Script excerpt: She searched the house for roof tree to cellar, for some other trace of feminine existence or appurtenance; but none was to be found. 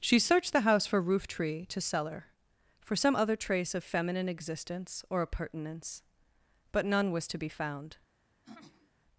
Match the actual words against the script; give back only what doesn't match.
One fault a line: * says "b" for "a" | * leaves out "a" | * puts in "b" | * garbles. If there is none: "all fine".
all fine